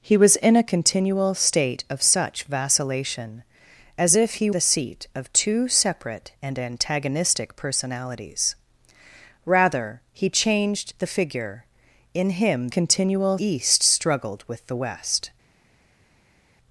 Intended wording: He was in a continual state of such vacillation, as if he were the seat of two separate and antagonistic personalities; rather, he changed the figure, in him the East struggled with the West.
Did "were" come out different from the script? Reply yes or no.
yes